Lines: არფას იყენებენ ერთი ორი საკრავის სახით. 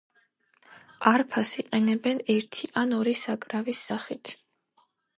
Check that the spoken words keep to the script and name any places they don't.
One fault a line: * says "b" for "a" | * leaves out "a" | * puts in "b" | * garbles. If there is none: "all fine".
* puts in "ან"